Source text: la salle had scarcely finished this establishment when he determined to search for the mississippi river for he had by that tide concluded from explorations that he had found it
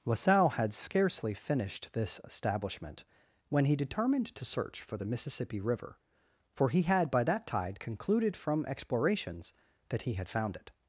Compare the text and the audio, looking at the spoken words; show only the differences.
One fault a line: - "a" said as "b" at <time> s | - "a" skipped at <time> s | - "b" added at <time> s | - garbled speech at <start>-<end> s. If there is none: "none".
none